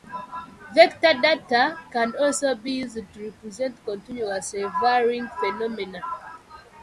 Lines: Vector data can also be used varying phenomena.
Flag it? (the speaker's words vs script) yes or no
yes